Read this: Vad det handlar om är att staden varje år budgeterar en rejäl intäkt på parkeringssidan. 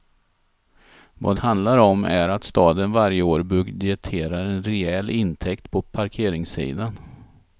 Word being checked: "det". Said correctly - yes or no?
no